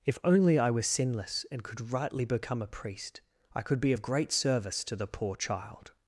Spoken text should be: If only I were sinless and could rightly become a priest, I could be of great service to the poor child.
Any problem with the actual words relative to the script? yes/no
no